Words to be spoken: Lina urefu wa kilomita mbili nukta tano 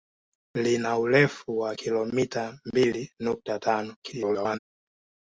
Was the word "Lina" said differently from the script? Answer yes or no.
no